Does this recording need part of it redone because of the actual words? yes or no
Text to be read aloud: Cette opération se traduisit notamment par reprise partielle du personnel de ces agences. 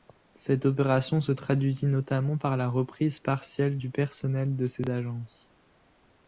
yes